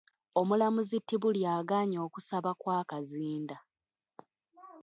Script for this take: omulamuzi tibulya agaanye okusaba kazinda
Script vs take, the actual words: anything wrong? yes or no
yes